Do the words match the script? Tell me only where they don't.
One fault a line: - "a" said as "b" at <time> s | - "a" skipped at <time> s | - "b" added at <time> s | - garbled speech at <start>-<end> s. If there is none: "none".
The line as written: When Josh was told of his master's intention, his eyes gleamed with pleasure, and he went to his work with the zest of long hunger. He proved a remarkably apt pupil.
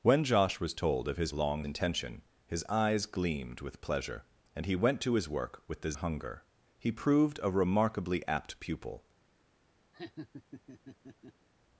- "master's" said as "long" at 1.3 s
- "zest of long" skipped at 5.9 s